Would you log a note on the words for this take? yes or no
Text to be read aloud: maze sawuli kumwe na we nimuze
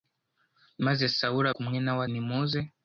no